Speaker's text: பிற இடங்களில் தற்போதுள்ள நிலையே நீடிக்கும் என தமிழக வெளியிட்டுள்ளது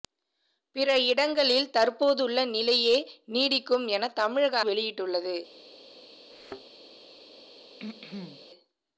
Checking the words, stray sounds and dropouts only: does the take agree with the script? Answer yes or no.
no